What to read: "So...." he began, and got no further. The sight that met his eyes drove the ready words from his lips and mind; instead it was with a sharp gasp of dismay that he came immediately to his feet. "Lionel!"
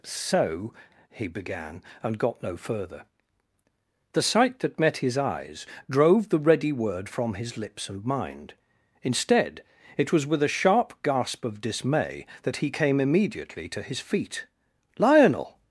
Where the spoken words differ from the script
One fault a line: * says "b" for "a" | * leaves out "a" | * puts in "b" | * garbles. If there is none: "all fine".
* says "word" for "words"